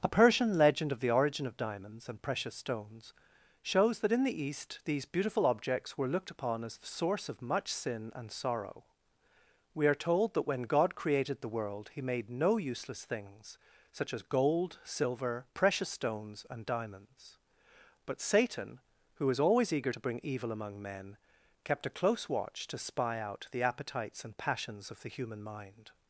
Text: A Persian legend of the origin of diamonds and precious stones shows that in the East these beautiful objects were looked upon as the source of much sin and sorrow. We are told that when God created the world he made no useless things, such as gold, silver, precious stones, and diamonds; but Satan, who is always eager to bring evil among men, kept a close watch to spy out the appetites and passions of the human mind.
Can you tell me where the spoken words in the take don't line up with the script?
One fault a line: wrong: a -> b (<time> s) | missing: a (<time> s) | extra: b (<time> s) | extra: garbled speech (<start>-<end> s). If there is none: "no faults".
wrong: is -> was (19.3 s)